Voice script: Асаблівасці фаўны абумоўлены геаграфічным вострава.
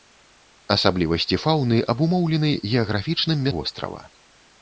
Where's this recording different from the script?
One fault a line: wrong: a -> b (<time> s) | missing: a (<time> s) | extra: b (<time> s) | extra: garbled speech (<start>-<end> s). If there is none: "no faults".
no faults